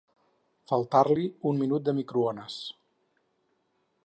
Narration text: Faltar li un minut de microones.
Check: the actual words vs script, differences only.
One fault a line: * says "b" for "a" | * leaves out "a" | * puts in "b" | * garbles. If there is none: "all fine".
all fine